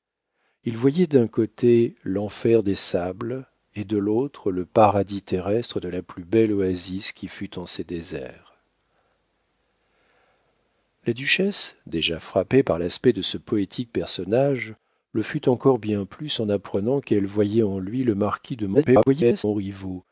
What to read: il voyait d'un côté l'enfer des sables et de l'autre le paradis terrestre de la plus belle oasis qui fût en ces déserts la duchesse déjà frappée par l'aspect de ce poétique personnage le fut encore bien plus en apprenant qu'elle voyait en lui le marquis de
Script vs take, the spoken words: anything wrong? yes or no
yes